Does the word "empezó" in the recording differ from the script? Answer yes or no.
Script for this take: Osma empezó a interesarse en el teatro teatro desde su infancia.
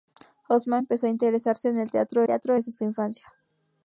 no